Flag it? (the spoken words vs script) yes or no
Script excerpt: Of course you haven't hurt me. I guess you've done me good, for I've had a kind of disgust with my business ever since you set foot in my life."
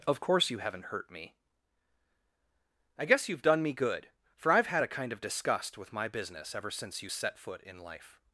yes